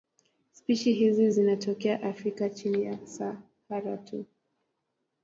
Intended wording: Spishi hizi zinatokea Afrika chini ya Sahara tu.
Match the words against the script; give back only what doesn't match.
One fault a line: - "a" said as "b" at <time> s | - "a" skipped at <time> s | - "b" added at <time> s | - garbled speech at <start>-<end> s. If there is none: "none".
none